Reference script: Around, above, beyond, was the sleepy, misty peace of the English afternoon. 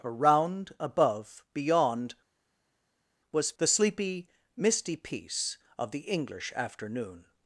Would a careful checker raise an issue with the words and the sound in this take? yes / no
no